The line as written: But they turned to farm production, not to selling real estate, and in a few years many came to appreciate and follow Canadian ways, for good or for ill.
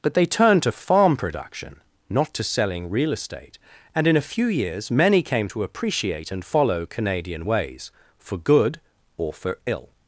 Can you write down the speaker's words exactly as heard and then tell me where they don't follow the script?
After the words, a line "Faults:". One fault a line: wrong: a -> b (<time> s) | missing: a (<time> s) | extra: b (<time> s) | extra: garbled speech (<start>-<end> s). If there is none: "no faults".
But they turned to farm production, not to selling real estate, and in a few years many came to appreciate and follow Canadian ways, for good or for ill.
Faults:
no faults